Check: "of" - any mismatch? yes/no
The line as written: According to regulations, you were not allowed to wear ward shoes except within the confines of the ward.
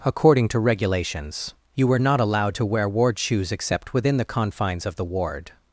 no